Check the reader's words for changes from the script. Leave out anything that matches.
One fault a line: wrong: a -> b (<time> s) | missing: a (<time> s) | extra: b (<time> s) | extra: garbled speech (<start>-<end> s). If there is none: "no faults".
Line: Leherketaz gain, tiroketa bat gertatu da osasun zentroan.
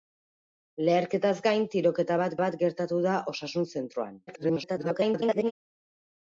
extra: bat (2.4 s)
extra: garbled speech (4.3-5.5 s)